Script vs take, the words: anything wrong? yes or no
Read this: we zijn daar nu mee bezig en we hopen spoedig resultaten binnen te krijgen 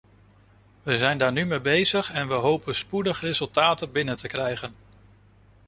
no